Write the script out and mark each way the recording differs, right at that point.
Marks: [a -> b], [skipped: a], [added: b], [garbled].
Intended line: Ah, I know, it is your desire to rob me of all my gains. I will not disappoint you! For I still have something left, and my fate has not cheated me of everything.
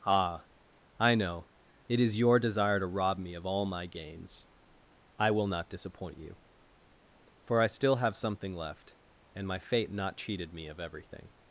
Ah, I know, it is your desire to rob me of all my gains. I will not disappoint you! For I still have something left, and my fate [skipped: has] not cheated me of everything.